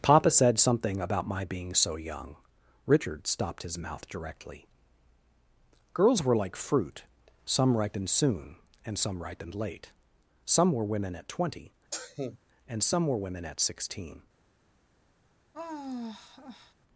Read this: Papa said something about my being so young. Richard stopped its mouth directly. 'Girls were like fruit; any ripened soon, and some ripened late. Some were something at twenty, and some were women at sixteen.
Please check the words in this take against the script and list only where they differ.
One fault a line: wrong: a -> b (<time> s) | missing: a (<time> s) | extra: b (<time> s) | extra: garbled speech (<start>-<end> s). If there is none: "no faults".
wrong: its -> his (3.6 s)
wrong: any -> some (7.5 s)
wrong: something -> women (10.8 s)